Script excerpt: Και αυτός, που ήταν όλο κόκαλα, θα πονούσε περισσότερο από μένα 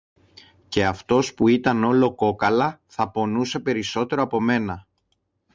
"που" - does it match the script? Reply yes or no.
yes